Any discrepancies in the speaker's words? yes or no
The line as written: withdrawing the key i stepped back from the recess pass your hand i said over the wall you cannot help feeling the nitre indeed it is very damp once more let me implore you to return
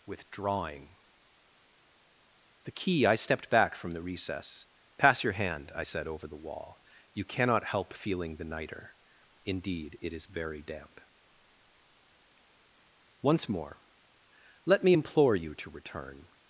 no